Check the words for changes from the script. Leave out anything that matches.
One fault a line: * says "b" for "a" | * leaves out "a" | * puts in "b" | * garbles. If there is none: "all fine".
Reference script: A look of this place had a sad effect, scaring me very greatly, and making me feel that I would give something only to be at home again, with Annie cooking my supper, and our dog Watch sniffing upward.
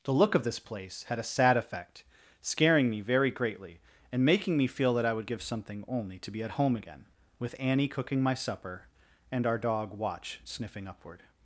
* says "The" for "A"